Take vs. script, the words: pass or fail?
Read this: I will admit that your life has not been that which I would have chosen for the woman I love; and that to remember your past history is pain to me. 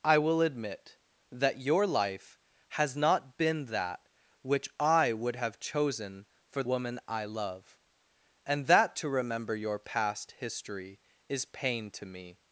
fail